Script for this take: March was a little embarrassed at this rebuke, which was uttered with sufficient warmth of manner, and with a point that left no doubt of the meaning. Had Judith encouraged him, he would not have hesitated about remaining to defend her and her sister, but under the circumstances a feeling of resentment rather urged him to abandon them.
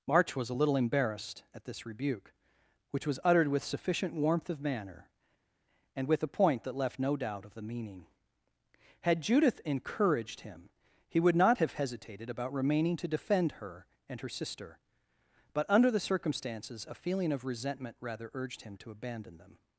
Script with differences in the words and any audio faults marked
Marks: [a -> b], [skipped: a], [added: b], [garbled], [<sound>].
March was a little embarrassed at this rebuke, which was uttered with sufficient warmth of manner, and with a point that left no doubt of the meaning. Had Judith encouraged him, he would not have hesitated about remaining to defend her and her sister, but under the circumstances a feeling of resentment rather urged him to abandon them.